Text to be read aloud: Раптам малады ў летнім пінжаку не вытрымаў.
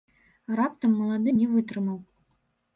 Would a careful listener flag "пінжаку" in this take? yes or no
yes